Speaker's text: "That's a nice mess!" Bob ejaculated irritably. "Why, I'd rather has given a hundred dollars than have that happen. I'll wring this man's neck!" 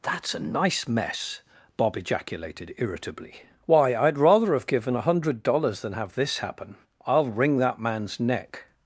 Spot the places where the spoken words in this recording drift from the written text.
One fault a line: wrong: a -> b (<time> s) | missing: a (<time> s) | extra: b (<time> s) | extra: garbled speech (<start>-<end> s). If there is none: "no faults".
wrong: has -> have (4.5 s)
wrong: that -> this (6.2 s)
wrong: this -> that (7.6 s)